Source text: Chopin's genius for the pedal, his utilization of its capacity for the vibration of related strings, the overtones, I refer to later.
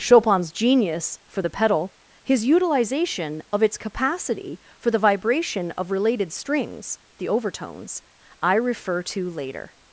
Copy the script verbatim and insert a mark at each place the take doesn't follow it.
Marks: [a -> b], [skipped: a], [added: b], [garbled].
Chopin's genius for the pedal, his utilization of its capacity for the vibration of related strings, the overtones, I refer to later.